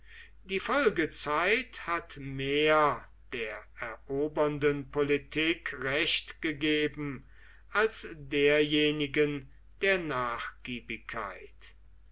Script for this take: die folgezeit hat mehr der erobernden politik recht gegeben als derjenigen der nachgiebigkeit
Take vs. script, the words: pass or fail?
pass